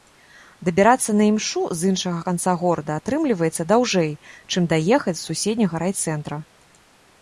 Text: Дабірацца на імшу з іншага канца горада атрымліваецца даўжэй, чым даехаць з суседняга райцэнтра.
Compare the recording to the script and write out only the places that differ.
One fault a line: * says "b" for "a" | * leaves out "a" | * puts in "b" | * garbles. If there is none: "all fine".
all fine